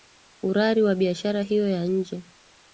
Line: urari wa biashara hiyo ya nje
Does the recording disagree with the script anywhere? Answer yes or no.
no